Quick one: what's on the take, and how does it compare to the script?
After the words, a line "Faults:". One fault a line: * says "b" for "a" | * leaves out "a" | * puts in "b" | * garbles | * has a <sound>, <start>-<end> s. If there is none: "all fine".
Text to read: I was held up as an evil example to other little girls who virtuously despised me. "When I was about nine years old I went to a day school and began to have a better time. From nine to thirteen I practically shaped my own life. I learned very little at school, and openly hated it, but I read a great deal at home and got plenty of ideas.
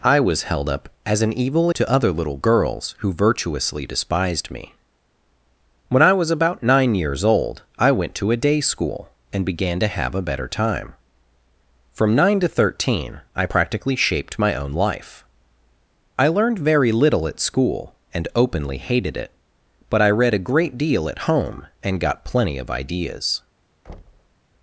I was held up as an evil to other little girls who virtuously despised me. "When I was about nine years old I went to a day school and began to have a better time. From nine to thirteen I practically shaped my own life. I learned very little at school, and openly hated it, but I read a great deal at home and got plenty of ideas.
Faults:
* leaves out "example"
* has a thud, 23.9-24.4 s